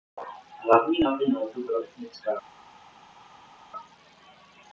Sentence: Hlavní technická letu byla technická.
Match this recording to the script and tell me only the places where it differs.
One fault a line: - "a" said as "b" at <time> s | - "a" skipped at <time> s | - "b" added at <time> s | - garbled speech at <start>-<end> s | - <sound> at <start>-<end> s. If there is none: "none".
- "technická" said as "náplň" at 1.0 s